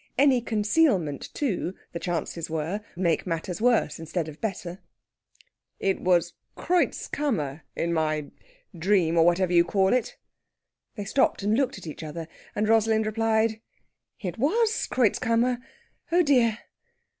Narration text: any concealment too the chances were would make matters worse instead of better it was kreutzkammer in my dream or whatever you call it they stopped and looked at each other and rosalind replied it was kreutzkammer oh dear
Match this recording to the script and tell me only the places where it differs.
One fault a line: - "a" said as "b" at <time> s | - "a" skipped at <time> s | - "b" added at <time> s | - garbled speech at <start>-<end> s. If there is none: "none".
- "would" skipped at 2.8 s